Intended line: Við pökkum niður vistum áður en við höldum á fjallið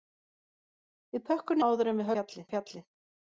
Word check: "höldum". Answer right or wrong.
wrong